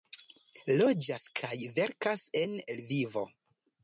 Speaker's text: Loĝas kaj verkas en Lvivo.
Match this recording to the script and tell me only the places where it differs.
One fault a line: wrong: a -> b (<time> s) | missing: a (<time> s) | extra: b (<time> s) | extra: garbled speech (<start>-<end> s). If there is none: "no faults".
no faults